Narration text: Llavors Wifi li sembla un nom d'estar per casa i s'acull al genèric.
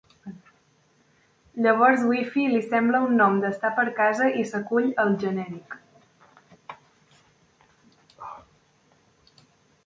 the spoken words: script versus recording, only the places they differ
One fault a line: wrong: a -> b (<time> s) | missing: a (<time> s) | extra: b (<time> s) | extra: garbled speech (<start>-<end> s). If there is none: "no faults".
no faults